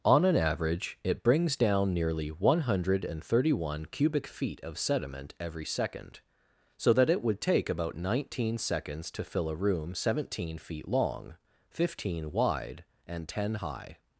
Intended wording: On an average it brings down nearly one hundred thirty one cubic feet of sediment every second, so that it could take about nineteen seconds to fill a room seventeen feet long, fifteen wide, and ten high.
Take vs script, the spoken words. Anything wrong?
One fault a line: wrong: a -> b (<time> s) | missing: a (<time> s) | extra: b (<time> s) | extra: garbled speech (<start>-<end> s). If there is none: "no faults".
wrong: could -> would (7.2 s)